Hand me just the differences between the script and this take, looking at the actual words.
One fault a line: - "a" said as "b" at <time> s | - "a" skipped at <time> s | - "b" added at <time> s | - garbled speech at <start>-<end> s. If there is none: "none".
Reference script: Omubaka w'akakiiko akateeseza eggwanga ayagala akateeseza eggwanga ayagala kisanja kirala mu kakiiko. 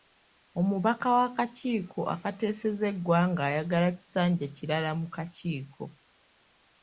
- "akateeseza eggwanga ayagala" skipped at 3.9 s